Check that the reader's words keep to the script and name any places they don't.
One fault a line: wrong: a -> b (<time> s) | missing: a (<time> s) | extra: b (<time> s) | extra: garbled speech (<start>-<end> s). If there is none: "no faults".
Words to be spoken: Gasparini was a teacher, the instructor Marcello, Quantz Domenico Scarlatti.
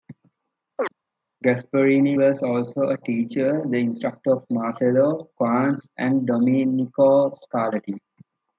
extra: also (2.4 s)
extra: of (4.3 s)
extra: and (6.0 s)